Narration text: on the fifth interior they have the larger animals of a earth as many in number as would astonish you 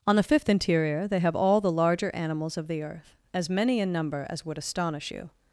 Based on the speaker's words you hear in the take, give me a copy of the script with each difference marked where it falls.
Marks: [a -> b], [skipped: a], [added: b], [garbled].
on the fifth interior they have [added: all] the larger animals of [a -> the] earth as many in number as would astonish you